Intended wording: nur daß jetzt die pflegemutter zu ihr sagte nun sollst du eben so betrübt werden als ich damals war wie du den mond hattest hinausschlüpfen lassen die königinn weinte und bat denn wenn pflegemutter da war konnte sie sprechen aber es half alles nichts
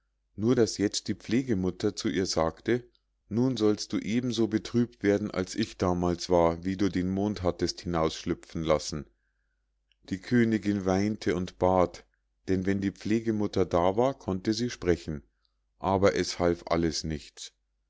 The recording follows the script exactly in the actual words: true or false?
false